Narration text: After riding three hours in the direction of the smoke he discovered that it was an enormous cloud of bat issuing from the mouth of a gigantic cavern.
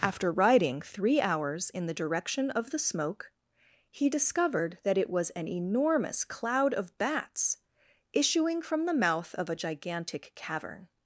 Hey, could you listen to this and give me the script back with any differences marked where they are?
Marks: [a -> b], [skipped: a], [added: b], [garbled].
After riding three hours in the direction of the smoke he discovered that it was an enormous cloud of [bat -> bats] issuing from the mouth of a gigantic cavern.